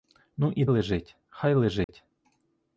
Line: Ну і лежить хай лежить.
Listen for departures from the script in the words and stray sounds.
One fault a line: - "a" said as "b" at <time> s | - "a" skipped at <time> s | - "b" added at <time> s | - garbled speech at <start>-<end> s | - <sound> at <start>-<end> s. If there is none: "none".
- dropout at 1.8-1.9 s